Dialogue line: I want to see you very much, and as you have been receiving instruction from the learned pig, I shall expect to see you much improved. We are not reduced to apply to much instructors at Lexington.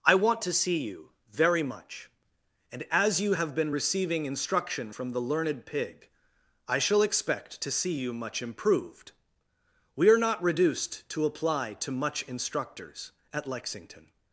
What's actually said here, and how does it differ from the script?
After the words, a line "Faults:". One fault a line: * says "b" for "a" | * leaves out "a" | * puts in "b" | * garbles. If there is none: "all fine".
I want to see you very much, and as you have been receiving instruction from the learned pig, I shall expect to see you much improved. We are not reduced to apply to much instructors at Lexington.
Faults:
all fine